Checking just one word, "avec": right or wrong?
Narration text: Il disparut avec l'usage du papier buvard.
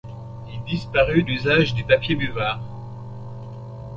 wrong